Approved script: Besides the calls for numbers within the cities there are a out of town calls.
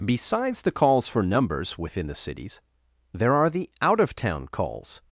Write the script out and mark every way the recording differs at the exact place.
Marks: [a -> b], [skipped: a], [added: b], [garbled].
Besides the calls for numbers within the cities there are [a -> the] out of town calls.